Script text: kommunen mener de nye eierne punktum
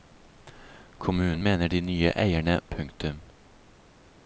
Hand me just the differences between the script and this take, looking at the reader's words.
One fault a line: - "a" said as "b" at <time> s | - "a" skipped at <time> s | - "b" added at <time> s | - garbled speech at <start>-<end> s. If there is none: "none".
none